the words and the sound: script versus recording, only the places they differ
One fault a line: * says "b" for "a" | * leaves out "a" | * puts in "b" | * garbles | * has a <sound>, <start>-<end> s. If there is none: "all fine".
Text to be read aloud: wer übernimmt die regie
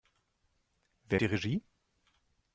* leaves out "übernimmt"